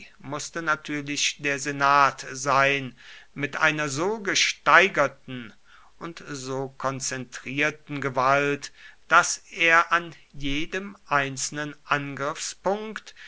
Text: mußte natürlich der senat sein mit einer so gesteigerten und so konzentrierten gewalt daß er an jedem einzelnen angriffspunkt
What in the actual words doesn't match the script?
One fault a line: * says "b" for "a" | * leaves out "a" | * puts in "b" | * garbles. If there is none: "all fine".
all fine